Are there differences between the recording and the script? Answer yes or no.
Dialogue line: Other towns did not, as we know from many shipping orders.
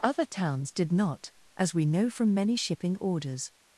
no